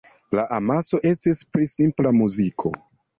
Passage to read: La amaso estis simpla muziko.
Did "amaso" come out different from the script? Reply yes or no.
no